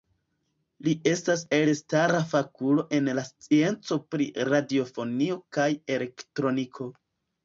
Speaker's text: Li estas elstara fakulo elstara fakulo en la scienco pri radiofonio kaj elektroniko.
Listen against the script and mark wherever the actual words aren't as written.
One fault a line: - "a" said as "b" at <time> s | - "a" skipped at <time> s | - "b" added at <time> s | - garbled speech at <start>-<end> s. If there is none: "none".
- "elstara fakulo" skipped at 2.8 s